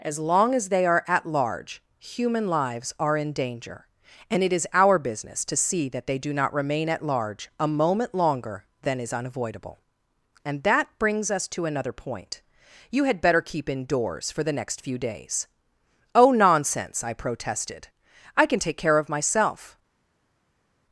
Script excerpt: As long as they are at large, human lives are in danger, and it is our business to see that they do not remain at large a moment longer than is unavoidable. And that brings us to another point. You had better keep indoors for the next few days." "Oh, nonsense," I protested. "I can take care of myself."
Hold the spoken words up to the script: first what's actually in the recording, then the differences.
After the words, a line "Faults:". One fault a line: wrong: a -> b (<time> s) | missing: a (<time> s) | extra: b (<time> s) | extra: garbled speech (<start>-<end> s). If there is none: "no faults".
As long as they are at large, human lives are in danger, and it is our business to see that they do not remain at large a moment longer than is unavoidable. And that brings us to another point. You had better keep indoors for the next few days." "Oh, nonsense," I protested. "I can take care of myself."
Faults:
no faults